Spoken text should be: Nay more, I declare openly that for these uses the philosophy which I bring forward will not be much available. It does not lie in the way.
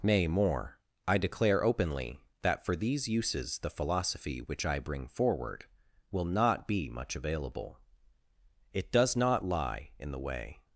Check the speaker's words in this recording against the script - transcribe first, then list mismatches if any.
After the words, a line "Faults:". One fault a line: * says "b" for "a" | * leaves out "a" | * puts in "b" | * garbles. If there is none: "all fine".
Nay more, I declare openly that for these uses the philosophy which I bring forward will not be much available. It does not lie in the way.
Faults:
all fine